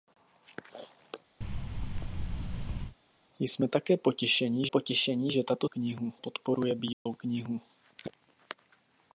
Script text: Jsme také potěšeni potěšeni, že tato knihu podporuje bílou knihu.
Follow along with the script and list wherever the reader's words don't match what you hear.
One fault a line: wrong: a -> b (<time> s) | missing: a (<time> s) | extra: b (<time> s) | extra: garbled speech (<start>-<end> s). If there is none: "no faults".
no faults